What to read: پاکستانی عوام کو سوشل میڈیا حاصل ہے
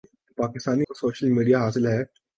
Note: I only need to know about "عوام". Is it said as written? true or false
false